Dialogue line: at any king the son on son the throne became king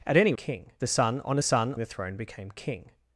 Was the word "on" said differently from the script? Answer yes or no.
no